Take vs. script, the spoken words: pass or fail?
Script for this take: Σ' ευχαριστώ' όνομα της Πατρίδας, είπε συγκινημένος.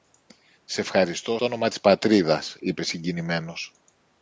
pass